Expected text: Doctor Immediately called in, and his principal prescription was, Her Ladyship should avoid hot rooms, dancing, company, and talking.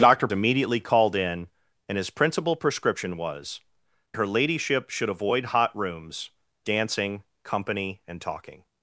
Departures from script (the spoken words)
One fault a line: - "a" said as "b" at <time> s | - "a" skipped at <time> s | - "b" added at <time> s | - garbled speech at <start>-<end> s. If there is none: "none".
none